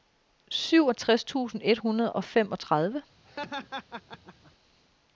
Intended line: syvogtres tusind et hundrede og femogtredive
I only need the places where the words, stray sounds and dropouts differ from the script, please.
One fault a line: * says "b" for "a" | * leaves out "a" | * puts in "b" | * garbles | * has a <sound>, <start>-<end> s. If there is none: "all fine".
* has a laugh, 3.3-4.5 s